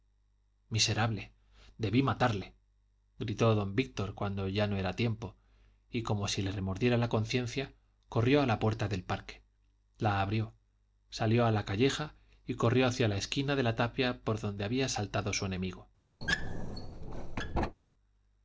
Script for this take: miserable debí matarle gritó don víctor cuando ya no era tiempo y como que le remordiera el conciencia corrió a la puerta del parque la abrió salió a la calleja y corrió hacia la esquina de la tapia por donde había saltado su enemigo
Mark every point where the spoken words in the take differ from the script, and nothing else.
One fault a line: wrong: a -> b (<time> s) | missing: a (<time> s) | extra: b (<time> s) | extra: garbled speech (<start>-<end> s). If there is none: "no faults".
wrong: que -> si (6.3 s)
wrong: el -> la (7.0 s)